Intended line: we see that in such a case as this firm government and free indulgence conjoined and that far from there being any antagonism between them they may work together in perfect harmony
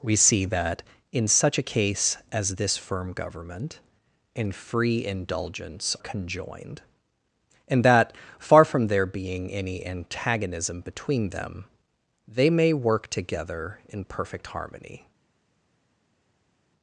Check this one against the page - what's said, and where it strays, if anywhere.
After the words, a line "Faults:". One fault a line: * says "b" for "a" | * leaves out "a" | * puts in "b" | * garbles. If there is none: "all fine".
we see that in such a case as this firm government and free indulgence conjoined and that far from there being any antagonism between them they may work together in perfect harmony
Faults:
all fine